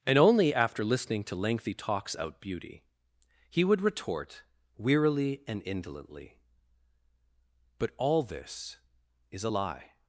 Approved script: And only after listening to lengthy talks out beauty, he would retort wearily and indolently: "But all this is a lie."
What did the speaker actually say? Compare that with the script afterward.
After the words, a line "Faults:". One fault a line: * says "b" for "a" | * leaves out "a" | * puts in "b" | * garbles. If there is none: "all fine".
And only after listening to lengthy talks out beauty, he would retort wearily and indolently: "But all this is a lie."
Faults:
all fine